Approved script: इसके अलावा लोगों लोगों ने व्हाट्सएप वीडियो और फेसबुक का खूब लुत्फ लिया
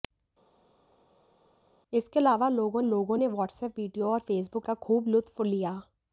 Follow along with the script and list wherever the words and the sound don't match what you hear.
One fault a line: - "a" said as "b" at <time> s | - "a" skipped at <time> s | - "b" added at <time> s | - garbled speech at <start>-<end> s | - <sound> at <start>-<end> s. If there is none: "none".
none